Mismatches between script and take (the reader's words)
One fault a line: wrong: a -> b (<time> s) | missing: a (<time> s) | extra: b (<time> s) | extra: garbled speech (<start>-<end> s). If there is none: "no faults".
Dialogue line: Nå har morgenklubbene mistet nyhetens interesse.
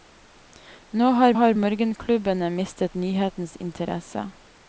extra: har (1.4 s)